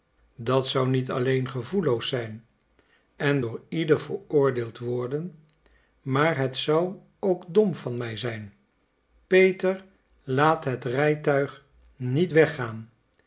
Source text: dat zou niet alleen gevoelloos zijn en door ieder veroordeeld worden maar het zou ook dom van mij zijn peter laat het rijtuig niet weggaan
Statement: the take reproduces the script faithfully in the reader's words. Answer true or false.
true